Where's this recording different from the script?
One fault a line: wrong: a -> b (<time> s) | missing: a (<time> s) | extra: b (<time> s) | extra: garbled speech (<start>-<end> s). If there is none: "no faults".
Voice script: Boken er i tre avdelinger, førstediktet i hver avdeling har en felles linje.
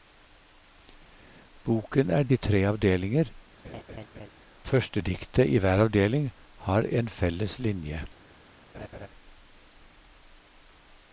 no faults